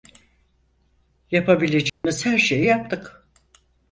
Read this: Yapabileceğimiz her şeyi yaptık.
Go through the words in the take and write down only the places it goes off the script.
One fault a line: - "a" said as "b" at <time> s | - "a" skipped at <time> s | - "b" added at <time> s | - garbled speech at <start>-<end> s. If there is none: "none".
none